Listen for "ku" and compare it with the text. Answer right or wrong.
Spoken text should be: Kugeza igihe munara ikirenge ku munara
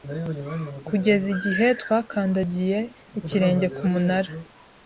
right